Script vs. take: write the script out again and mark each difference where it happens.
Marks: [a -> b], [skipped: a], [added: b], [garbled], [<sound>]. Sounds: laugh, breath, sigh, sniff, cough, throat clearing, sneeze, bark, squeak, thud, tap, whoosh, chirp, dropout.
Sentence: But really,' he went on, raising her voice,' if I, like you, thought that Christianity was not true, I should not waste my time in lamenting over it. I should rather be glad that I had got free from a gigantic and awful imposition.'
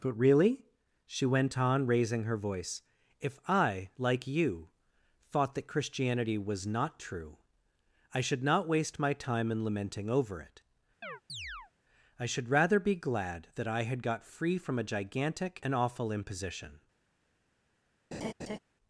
But really,' [he -> she] went on, raising her voice,' if I, like you, thought that Christianity was not true, I should not waste my time in lamenting over it. [chirp] I should rather be glad that I had got free from a gigantic and awful imposition.' [laugh]